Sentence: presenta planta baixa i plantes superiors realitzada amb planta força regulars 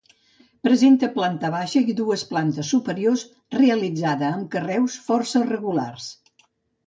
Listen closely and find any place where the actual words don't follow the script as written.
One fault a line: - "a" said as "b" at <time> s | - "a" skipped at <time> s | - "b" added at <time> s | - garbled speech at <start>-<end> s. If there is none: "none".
- "dues" added at 2.0 s
- "planta" said as "carreus" at 4.6 s